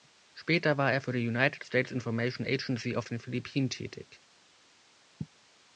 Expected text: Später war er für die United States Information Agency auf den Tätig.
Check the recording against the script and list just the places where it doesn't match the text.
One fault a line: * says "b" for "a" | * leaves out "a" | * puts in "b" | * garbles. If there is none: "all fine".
* puts in "Philippinen"